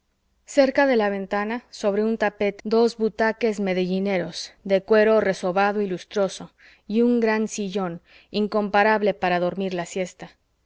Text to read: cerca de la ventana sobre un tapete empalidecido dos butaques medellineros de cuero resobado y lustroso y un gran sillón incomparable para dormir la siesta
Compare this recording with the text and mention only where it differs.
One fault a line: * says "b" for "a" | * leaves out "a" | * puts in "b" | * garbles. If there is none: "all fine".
* leaves out "empalidecido"